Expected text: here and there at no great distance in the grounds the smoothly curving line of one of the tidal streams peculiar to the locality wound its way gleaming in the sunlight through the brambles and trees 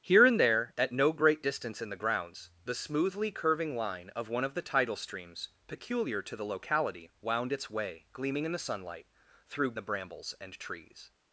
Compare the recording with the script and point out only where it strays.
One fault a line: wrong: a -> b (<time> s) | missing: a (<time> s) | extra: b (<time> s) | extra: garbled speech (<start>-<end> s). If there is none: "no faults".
no faults